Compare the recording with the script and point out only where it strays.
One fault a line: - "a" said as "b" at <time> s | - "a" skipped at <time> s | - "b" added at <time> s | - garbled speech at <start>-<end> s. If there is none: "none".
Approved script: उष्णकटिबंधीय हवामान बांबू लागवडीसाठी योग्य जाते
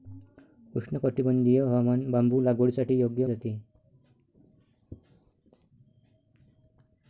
none